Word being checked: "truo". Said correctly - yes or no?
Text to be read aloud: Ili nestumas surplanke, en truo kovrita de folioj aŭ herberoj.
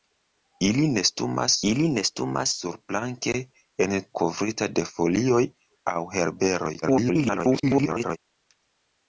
no